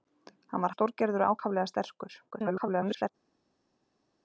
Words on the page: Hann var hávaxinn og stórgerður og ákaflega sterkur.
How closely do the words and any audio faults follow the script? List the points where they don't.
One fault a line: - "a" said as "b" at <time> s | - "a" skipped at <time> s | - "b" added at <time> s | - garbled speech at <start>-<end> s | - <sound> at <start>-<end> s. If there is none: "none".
- "hávaxinn" skipped at 0.7 s
- garbled speech at 2.3-3.1 s